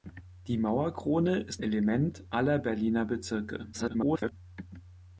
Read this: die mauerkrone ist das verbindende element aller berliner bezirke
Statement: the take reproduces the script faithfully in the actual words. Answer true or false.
false